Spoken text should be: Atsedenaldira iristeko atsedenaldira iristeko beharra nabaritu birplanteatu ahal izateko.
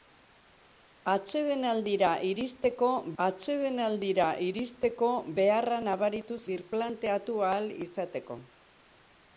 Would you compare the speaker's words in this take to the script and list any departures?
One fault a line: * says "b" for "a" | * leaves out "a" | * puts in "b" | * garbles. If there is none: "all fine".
all fine